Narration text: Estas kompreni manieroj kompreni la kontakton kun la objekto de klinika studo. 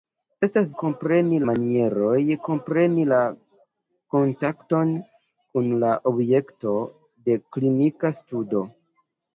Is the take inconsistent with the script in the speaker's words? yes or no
no